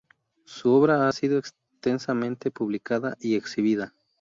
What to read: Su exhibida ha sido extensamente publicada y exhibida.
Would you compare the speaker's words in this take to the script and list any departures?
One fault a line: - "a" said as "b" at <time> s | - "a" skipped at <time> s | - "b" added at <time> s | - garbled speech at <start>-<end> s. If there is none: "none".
- "exhibida" said as "obra" at 0.7 s